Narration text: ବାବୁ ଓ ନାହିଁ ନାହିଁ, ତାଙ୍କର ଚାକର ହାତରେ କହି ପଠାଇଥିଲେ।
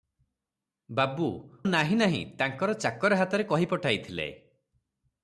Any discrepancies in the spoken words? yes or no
yes